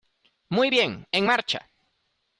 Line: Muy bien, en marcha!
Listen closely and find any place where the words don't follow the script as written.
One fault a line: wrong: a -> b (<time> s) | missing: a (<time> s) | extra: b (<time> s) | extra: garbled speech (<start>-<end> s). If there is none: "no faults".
no faults